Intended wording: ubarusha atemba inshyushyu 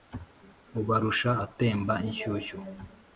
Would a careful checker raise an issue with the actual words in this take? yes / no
no